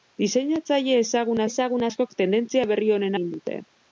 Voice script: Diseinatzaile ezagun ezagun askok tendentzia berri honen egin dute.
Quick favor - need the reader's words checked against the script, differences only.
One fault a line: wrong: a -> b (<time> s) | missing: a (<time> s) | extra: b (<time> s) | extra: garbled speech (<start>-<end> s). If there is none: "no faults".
no faults